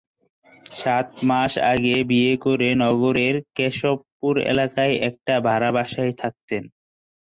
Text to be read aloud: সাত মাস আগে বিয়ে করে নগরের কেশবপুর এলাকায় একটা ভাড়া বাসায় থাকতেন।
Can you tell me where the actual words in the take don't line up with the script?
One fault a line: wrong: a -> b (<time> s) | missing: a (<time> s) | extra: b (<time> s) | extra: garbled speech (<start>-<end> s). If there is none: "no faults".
no faults